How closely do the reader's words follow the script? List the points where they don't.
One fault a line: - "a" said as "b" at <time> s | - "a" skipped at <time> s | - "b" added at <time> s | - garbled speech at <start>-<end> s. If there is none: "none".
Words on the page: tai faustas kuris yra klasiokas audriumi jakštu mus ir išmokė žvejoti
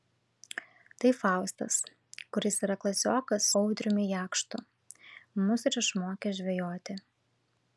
none